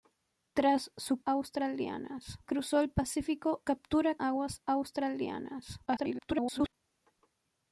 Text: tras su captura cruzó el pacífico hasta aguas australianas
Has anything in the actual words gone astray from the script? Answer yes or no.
yes